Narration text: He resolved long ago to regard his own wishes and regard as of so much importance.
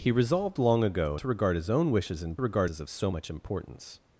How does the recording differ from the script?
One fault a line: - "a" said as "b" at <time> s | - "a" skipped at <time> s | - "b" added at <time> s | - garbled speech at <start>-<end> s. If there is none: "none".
none